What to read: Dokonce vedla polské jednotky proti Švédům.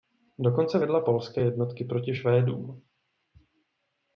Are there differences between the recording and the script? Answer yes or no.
no